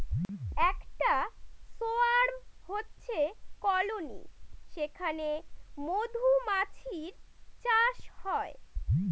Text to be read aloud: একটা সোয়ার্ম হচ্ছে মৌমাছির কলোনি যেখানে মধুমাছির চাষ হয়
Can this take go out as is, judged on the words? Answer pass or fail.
fail